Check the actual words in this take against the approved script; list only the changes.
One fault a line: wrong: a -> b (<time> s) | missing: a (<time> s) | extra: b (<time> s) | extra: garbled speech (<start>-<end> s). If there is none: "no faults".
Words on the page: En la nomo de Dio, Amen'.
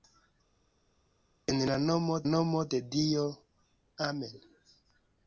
extra: nomo (2.3 s)